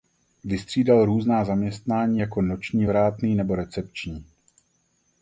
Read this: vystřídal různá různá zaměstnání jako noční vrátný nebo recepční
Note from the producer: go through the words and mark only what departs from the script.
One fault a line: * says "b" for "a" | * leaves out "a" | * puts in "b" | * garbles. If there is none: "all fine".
* leaves out "různá"